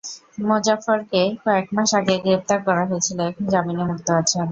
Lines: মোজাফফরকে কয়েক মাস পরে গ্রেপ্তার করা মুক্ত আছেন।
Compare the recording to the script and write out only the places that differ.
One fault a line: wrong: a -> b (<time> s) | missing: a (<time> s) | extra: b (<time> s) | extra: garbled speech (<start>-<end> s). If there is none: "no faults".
wrong: পরে -> আগে (2.0 s)
extra: হয়েছিল এখন জামিনে (2.9 s)